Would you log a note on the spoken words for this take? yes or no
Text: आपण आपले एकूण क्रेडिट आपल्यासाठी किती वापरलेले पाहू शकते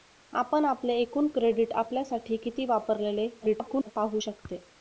yes